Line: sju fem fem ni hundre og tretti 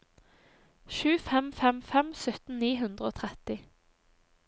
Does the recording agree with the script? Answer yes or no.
no